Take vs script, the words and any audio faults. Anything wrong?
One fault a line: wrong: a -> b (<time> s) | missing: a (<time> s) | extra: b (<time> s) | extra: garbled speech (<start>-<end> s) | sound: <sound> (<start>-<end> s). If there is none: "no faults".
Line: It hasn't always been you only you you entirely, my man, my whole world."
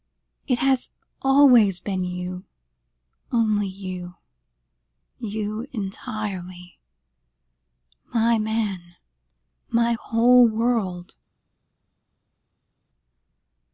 wrong: hasn't -> has (0.6 s)